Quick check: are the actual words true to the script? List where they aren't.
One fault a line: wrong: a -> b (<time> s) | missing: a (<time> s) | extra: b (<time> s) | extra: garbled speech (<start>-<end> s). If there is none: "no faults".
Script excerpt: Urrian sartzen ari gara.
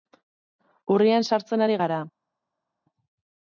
no faults